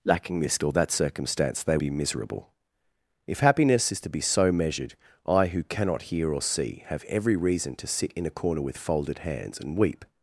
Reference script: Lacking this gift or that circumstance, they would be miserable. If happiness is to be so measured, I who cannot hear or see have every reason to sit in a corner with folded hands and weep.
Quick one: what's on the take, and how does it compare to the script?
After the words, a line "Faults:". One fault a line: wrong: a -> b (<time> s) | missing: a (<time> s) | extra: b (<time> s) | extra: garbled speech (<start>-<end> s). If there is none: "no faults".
Lacking this or that circumstance, they be miserable. If happiness is to be so measured, I who cannot hear or see have every reason to sit in a corner with folded hands and weep.
Faults:
missing: gift (0.6 s)
missing: would (1.8 s)